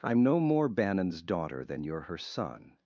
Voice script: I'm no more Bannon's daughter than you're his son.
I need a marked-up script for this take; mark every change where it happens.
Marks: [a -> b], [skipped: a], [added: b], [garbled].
I'm no more Bannon's daughter than you're [his -> her] son.